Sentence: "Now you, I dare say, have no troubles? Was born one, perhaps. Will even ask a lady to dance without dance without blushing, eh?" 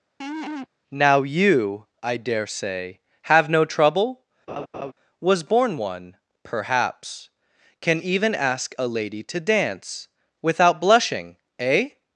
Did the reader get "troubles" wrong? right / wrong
wrong